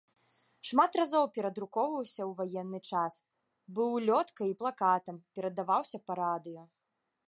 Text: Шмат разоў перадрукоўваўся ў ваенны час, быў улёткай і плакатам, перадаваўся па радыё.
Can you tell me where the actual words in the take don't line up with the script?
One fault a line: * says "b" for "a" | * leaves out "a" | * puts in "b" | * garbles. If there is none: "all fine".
all fine